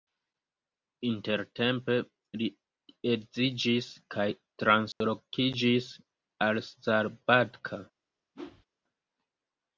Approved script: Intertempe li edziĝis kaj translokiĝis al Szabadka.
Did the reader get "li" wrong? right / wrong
right